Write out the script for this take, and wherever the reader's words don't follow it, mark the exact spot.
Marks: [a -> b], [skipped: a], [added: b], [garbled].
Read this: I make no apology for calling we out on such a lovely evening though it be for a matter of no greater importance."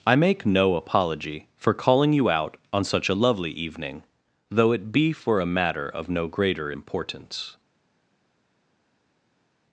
I make no apology for calling [we -> you] out on such a lovely evening though it be for a matter of no greater importance."